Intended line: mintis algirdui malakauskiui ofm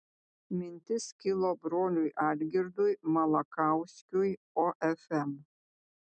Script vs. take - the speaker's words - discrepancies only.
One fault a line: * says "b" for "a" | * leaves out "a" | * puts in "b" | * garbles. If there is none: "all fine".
* puts in "kilo broliui"